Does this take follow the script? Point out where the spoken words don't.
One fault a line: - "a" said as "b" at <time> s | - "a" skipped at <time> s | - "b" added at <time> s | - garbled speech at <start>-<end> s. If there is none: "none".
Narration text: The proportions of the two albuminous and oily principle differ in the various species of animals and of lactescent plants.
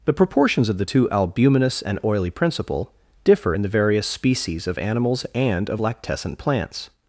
none